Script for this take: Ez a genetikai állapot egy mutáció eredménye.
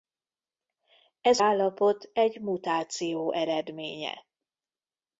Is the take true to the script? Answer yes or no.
no